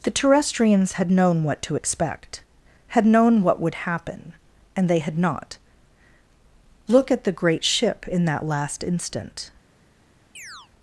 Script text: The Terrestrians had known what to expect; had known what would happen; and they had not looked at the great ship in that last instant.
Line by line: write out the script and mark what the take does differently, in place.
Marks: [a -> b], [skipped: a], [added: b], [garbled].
The Terrestrians had known what to expect; had known what would happen; and they had not [looked -> look] at the great ship in that last instant.